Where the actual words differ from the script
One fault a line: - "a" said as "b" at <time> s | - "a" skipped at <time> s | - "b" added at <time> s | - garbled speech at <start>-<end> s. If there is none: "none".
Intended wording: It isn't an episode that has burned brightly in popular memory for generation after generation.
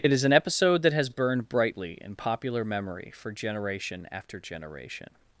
- "isn't" said as "is" at 0.1 s